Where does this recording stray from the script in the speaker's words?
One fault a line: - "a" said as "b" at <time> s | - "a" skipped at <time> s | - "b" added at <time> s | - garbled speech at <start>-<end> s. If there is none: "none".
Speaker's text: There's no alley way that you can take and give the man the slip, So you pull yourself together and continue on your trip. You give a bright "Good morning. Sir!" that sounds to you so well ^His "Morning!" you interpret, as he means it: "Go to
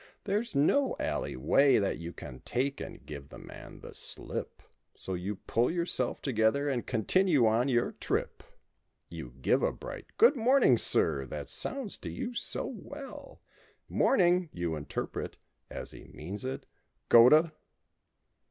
- "His" skipped at 13.4 s